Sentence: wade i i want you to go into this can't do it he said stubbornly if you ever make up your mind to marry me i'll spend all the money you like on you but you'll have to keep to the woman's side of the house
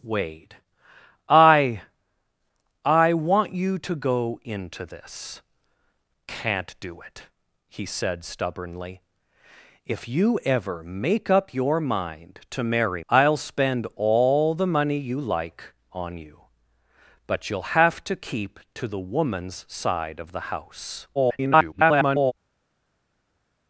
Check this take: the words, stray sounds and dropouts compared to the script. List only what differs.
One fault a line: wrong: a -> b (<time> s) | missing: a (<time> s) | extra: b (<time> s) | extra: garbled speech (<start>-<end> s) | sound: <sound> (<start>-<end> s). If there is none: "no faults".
missing: me (13.0 s)
extra: garbled speech (21.1-22.3 s)